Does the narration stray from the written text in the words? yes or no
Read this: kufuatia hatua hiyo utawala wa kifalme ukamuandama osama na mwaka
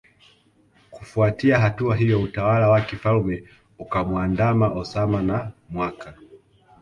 no